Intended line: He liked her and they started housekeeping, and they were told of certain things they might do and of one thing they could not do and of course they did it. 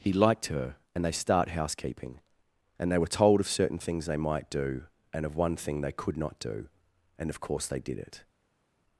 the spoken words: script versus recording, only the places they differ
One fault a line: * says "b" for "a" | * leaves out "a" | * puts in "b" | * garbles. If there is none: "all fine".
* says "start" for "started"